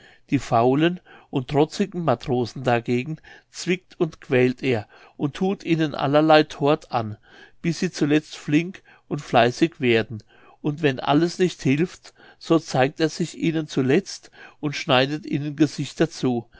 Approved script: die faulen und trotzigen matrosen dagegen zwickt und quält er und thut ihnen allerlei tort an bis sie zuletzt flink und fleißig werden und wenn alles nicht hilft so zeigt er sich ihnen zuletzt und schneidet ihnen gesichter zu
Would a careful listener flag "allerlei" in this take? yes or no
no